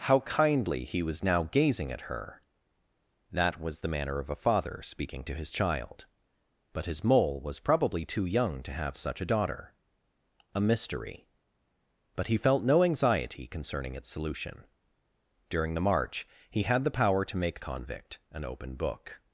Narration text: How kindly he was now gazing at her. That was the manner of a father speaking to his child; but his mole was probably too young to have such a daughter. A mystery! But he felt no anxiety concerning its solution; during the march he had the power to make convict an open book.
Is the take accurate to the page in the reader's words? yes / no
yes